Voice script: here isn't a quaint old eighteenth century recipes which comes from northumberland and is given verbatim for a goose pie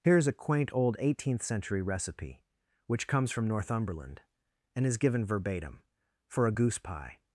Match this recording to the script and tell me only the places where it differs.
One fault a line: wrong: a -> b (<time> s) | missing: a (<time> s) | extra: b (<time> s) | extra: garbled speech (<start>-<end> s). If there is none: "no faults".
wrong: isn't -> is (0.2 s)
wrong: recipes -> recipe (1.8 s)